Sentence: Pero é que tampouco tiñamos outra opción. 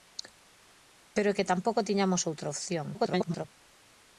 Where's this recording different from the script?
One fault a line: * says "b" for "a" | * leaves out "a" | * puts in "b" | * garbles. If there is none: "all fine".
* garbles